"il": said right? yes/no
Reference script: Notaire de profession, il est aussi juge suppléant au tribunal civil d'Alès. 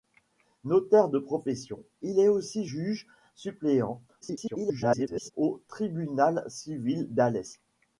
yes